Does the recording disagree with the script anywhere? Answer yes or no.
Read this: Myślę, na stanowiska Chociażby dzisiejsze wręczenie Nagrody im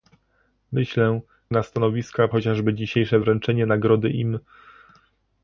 no